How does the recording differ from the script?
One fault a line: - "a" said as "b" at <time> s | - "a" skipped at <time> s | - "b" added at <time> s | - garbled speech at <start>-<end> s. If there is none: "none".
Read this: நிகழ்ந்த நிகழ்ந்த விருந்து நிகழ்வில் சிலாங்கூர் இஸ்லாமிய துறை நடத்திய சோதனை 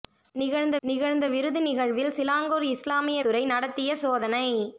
none